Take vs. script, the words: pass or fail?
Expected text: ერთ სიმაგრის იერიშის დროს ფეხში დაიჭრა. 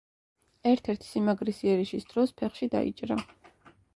fail